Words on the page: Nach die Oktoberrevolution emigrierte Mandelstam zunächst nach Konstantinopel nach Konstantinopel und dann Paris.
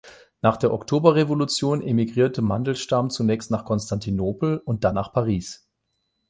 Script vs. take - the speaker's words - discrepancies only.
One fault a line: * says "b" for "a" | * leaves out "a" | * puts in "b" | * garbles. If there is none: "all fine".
* says "der" for "die"
* leaves out "nach Konstantinopel"
* puts in "nach"